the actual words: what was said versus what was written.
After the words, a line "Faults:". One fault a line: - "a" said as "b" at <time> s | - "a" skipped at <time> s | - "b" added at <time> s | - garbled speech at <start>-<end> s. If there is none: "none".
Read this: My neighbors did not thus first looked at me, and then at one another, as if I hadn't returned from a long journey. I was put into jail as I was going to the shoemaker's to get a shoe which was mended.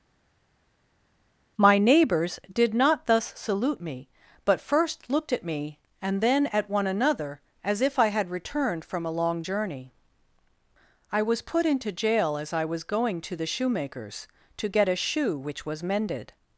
My neighbors did not thus salute me, but first looked at me, and then at one another, as if I had returned from a long journey. I was put into jail as I was going to the shoemaker's to get a shoe which was mended.
Faults:
- "salute me but" added at 3.3 s
- "hadn't" said as "had" at 8.1 s